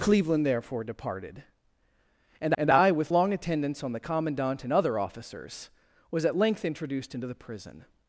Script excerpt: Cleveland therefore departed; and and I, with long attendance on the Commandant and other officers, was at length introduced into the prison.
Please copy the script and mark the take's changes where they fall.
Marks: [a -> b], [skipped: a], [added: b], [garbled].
Cleveland therefore departed; and and I, with long attendance on the Commandant and other officers, was at length introduced into the prison.